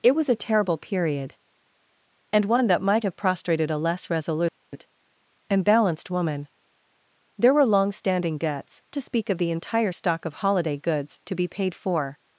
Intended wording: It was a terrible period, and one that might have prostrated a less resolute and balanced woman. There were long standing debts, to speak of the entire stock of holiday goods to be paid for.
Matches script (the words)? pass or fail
pass